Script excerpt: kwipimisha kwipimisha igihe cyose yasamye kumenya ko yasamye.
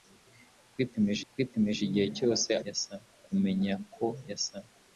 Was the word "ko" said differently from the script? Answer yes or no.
no